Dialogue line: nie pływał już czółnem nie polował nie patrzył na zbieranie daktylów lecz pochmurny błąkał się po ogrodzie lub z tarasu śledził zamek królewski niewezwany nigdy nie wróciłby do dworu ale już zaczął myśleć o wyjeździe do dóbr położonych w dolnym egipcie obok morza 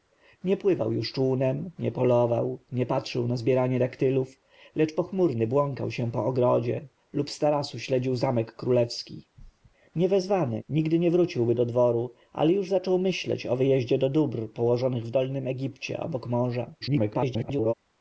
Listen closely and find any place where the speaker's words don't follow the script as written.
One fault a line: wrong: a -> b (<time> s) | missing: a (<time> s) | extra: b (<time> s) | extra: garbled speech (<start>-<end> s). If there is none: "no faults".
extra: garbled speech (16.8-17.7 s)